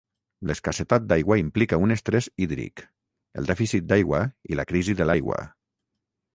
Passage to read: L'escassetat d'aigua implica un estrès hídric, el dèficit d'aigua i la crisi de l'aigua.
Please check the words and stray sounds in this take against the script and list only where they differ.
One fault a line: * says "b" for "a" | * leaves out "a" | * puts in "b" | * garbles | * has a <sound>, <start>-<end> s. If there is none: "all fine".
all fine